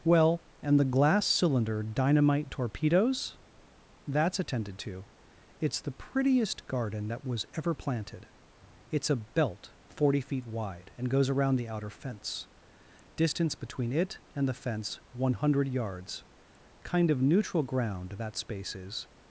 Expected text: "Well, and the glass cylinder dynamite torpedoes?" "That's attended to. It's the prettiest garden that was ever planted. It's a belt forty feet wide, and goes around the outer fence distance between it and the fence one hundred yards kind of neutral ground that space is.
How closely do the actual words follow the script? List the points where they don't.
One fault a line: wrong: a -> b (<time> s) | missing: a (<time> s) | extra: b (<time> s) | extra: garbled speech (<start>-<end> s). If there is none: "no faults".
no faults